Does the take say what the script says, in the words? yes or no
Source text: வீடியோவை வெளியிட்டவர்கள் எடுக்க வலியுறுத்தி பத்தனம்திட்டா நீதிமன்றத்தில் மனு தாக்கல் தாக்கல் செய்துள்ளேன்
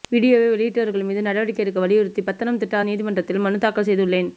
no